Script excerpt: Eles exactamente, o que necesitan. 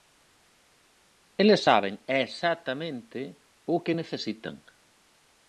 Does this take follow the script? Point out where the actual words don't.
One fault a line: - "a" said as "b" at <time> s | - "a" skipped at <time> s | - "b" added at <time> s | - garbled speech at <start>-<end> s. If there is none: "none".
- "saben" added at 1.7 s